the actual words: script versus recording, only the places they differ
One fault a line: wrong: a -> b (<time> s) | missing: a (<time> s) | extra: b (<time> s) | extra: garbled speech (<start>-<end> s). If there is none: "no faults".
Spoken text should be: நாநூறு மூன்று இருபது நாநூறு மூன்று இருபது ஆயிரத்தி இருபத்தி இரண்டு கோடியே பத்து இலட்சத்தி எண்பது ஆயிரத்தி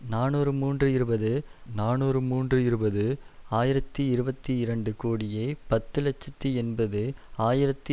no faults